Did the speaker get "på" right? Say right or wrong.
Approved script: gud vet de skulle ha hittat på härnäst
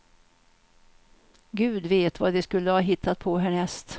right